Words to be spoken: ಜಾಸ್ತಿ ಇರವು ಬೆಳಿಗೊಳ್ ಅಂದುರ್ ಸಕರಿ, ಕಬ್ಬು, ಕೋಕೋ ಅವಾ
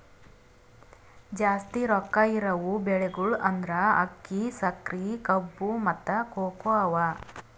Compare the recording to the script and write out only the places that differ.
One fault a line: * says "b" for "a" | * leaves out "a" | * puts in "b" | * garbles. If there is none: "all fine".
* puts in "ರೊಕ್ಕಾ"
* puts in "ಅಕ್ಕಿ"
* puts in "ಮತ್ತ"